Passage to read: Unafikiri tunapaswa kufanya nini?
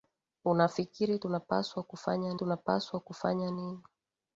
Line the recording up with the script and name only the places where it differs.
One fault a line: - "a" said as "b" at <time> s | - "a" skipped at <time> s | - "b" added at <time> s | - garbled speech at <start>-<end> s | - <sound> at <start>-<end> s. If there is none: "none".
- "tunapaswa kufanya" added at 2.3 s